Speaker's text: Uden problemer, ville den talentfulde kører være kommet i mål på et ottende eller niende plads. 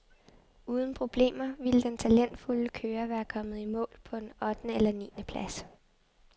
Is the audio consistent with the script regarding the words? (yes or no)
no